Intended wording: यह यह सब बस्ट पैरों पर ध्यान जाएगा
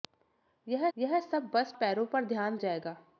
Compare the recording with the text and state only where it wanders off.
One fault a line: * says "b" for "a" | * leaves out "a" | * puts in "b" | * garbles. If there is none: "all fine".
all fine